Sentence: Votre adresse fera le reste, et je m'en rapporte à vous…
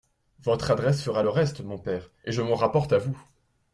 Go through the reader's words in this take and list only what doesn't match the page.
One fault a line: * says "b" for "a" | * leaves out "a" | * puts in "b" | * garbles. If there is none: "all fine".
* puts in "mon père"